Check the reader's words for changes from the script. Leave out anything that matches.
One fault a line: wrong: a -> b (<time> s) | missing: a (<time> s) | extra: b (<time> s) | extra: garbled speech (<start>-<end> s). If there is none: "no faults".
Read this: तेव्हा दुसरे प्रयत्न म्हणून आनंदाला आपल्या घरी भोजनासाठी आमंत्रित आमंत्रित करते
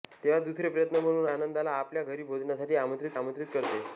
no faults